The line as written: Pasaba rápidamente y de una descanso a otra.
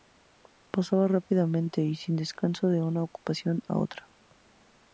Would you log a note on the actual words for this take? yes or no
yes